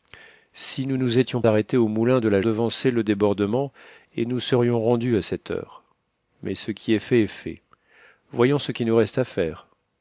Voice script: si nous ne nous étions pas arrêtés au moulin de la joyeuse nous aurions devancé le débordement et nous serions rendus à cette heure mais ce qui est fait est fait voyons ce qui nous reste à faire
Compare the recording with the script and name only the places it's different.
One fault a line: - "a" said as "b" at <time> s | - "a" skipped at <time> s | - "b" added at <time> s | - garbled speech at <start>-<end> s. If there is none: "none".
- "ne" skipped at 1.0 s
- "pas" skipped at 1.4 s
- "joyeuse nous aurions" skipped at 2.4 s